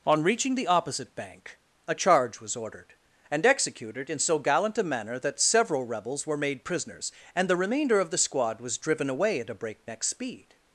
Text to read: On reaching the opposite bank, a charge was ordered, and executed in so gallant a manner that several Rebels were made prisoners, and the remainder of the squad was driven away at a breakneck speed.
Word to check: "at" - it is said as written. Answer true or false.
true